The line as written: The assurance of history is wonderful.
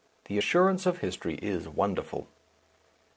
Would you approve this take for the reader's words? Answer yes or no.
yes